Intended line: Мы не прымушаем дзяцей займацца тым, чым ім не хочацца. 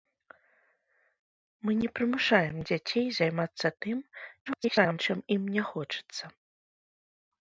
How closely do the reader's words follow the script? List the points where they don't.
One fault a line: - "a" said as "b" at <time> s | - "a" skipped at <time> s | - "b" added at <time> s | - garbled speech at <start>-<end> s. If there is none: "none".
- garbled speech at 4.5-5.0 s